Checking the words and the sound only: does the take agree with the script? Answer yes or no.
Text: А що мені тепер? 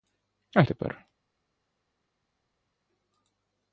no